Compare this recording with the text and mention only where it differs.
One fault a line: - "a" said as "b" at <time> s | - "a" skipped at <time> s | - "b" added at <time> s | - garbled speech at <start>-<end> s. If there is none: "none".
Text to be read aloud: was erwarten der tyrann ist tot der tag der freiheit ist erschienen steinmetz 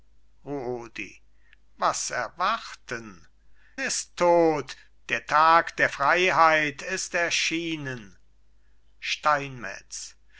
- "der tyrann" skipped at 3.3 s